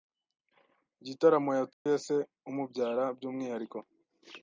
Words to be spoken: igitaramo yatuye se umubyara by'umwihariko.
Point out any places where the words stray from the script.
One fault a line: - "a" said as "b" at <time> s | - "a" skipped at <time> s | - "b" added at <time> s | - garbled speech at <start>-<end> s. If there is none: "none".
none